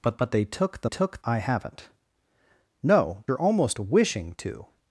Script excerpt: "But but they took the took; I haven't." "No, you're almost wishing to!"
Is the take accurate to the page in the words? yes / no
yes